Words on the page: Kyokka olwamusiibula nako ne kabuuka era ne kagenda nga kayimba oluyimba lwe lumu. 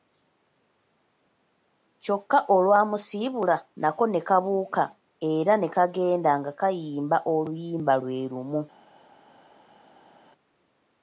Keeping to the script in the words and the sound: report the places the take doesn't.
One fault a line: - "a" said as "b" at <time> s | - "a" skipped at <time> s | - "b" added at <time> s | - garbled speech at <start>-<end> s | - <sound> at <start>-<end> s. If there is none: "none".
none